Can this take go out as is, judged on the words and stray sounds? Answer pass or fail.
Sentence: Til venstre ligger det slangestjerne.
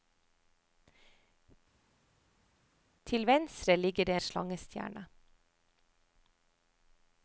pass